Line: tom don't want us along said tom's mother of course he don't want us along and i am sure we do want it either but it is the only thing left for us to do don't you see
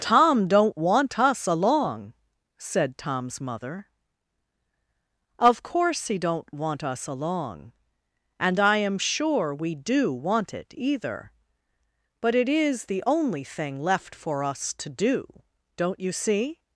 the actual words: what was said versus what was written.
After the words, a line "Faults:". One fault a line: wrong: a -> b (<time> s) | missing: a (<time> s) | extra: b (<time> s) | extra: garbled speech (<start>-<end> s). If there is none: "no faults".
tom don't want us along said tom's mother of course he don't want us along and i am sure we do want it either but it is the only thing left for us to do don't you see
Faults:
no faults